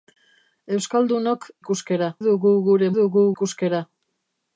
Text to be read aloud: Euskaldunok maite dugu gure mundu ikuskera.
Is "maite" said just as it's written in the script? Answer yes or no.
no